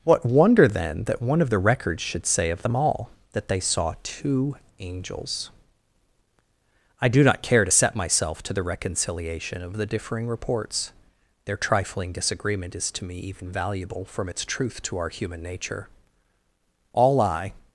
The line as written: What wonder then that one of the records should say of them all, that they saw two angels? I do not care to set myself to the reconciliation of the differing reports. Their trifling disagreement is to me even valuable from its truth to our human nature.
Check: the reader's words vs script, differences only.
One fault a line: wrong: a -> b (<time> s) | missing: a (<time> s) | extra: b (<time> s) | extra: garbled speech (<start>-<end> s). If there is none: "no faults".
extra: All I (16.9 s)